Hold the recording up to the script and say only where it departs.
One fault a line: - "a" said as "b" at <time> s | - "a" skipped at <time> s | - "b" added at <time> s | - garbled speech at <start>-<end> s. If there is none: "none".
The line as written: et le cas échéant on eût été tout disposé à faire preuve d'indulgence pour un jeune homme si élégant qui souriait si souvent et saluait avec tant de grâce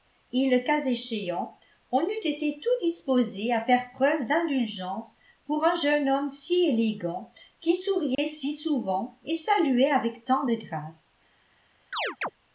none